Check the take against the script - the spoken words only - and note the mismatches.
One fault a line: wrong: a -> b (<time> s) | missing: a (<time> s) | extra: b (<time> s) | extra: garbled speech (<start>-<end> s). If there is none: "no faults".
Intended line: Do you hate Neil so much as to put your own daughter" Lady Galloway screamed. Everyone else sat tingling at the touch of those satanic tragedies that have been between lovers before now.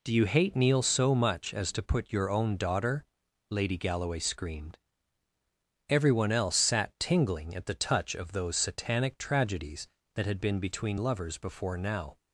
wrong: have -> had (10.2 s)